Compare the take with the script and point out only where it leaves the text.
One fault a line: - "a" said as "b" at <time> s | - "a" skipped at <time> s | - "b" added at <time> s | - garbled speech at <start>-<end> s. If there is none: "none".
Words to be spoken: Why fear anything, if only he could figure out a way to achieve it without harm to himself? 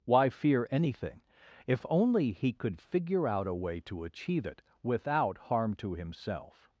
none